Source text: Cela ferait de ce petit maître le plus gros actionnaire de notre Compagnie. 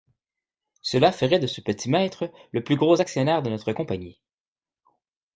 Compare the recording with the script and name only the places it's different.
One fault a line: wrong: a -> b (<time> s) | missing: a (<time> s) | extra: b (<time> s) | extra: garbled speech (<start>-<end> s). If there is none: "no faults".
no faults